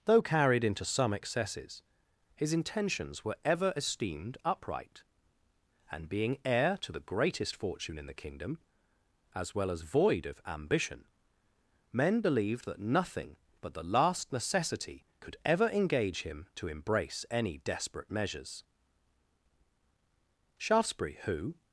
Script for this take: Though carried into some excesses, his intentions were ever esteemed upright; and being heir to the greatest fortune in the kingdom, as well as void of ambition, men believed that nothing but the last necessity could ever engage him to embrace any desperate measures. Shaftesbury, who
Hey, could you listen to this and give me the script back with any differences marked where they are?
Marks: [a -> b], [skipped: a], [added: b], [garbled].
Though carried into some excesses, his intentions were ever esteemed upright; and being heir to the greatest fortune in the kingdom, as well as void of ambition, men believed that nothing but the last necessity could ever engage him to embrace any desperate measures. Shaftesbury, who